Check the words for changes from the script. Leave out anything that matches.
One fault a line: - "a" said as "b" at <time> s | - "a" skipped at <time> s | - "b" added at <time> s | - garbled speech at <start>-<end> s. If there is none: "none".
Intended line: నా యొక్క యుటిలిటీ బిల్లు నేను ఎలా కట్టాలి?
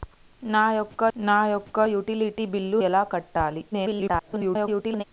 - "నా యొక్క" added at 1.1 s
- "నేను" skipped at 2.8 s
- garbled speech at 3.7-5.0 s